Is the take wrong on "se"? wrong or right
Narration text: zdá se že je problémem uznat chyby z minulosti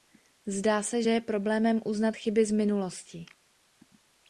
right